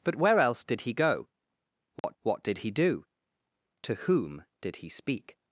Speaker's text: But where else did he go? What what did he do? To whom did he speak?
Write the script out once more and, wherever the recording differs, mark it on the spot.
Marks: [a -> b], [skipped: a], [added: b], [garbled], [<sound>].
But where else did he go? What [dropout] what did he do? To whom did he speak?